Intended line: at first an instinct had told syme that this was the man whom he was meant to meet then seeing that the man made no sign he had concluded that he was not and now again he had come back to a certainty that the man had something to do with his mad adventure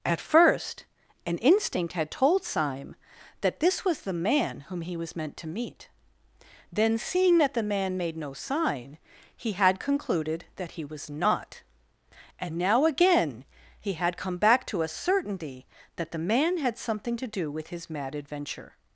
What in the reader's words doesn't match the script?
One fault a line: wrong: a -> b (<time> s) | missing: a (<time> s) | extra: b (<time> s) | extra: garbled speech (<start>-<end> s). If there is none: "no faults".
no faults